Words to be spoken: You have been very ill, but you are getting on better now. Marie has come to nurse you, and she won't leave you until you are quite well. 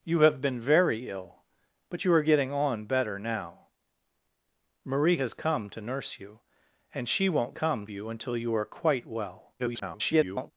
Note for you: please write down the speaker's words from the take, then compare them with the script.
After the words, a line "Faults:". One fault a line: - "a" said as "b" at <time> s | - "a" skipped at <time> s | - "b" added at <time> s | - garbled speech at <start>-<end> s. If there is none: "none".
You have been very ill, but you are getting on better now. Marie has come to nurse you, and she won't come you until you are quite well. [garbled]
Faults:
- "leave" said as "come" at 7.5 s
- garbled speech at 9.6-10.5 s